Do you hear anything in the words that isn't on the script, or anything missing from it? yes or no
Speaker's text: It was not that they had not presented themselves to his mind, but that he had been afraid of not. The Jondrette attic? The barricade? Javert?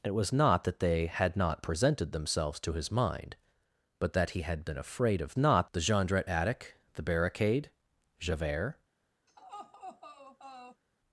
no